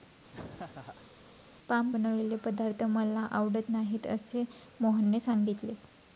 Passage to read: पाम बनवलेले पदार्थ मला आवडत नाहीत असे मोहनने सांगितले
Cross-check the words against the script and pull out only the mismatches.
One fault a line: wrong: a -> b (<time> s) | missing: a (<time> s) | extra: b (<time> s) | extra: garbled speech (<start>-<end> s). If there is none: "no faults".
no faults